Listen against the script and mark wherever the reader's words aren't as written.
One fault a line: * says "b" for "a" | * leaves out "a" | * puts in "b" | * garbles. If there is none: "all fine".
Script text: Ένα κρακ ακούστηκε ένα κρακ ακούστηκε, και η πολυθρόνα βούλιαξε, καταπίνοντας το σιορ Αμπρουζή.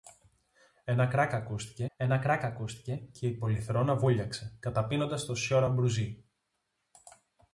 all fine